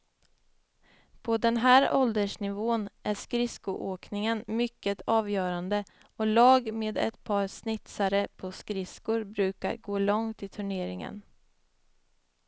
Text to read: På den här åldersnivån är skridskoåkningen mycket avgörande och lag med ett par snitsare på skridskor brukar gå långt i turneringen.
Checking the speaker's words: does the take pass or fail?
pass